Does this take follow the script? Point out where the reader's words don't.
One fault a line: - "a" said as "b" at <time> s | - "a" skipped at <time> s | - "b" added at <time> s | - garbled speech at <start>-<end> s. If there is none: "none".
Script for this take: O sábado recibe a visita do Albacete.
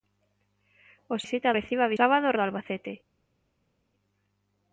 - "sábado" said as "visita" at 1.2 s
- "visita" said as "sábado" at 2.0 s